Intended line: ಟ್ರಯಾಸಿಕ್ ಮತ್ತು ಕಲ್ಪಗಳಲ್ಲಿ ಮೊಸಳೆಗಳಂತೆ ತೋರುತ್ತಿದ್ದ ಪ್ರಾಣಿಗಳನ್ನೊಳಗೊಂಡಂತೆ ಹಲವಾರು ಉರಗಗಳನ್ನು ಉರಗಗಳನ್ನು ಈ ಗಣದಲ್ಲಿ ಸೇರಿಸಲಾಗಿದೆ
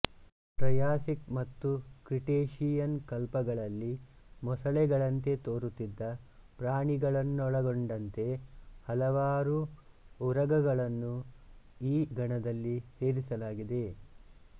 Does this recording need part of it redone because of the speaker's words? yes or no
yes